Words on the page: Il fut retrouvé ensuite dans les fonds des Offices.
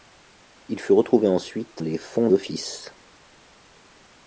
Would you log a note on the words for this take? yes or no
yes